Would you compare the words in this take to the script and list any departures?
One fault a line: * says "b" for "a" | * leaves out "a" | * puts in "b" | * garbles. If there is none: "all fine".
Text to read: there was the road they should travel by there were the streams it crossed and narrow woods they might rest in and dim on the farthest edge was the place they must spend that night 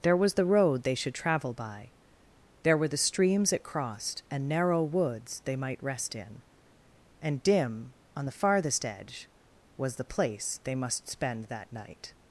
all fine